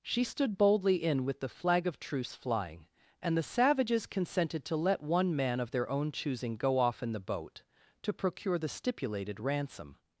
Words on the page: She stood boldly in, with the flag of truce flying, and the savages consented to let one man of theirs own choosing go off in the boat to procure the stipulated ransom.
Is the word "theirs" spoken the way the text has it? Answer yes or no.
no